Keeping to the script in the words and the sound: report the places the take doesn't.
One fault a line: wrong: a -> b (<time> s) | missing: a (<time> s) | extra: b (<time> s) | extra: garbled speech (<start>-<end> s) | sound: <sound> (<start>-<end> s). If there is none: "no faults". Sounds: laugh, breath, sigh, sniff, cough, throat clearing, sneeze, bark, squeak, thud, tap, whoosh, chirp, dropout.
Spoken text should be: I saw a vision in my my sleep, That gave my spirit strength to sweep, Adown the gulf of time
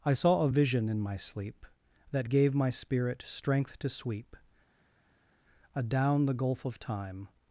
missing: my (1.2 s)